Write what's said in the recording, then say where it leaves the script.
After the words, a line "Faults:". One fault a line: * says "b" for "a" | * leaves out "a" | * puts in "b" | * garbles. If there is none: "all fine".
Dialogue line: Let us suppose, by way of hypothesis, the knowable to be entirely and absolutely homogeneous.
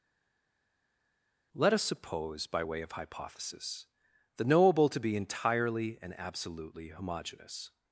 Let us suppose, by way of hypothesis, the knowable to be entirely and absolutely homogeneous.
Faults:
all fine